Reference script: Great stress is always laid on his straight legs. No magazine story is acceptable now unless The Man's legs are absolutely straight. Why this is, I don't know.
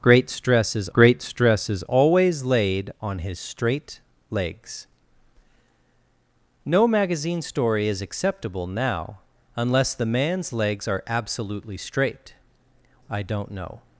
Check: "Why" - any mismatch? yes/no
yes